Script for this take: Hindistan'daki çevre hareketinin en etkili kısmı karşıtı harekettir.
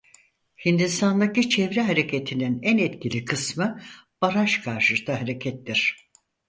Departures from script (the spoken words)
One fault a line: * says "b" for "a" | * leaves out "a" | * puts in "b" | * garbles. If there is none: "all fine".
* puts in "baraj"